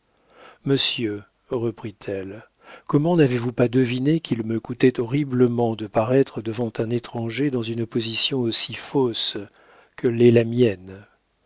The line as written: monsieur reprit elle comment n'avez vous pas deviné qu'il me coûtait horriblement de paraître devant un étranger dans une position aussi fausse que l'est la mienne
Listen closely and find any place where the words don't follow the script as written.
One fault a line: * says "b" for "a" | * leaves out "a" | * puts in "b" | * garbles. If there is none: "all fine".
all fine